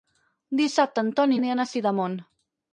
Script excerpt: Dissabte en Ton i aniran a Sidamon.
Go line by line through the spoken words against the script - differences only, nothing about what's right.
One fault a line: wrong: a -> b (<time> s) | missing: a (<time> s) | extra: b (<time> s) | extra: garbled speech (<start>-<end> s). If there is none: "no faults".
no faults